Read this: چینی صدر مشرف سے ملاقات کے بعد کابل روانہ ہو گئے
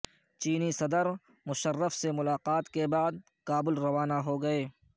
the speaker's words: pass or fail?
pass